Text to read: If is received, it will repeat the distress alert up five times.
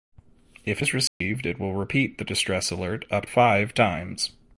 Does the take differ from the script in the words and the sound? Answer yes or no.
yes